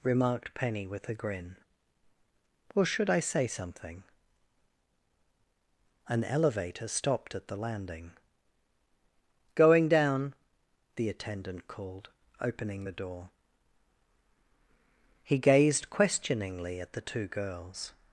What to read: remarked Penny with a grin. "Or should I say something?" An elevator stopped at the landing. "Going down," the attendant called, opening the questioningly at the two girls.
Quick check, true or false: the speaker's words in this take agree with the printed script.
false